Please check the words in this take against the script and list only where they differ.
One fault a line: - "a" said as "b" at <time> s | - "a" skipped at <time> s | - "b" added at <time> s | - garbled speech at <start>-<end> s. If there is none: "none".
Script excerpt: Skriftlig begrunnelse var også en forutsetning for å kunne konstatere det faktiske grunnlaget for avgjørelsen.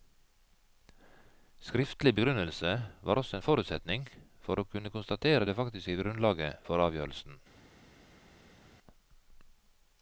none